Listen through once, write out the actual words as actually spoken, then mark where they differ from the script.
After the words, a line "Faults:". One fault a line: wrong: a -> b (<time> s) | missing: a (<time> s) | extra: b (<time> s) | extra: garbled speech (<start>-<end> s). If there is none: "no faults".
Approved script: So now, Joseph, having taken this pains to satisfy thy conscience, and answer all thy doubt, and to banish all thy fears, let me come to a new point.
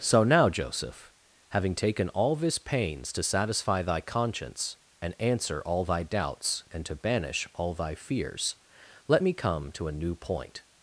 So now, Joseph, having taken all this pains to satisfy thy conscience, and answer all thy doubts, and to banish all thy fears, let me come to a new point.
Faults:
extra: all (2.1 s)
wrong: doubt -> doubts (6.0 s)